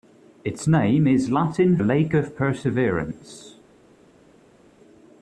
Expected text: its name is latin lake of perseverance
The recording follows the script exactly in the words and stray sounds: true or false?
true